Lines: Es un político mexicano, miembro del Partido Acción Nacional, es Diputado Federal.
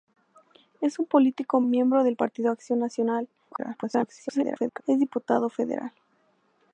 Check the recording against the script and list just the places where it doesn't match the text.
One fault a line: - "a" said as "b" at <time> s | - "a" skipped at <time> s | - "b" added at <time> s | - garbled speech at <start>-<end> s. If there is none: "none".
- "mexicano" skipped at 1.6 s
- garbled speech at 3.5-4.8 s